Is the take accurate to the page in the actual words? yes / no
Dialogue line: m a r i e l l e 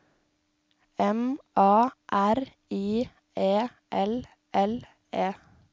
yes